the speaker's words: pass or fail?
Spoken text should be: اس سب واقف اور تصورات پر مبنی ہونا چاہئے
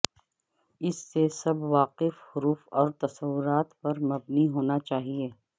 fail